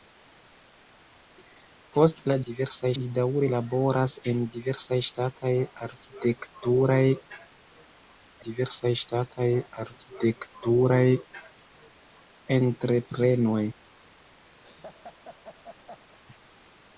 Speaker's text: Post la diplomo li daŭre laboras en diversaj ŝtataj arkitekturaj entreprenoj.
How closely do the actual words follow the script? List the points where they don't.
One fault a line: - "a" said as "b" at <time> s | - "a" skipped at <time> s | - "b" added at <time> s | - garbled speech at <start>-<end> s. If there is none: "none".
- "diplomo" said as "diversaj" at 2.5 s
- "diversaj ŝtataj arkitekturaj" added at 8.4 s